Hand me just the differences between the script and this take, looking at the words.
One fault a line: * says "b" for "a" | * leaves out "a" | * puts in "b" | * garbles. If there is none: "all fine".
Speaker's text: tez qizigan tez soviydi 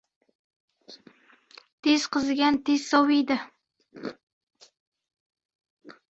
all fine